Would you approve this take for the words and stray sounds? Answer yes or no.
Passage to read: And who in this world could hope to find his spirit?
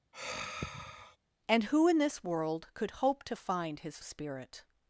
no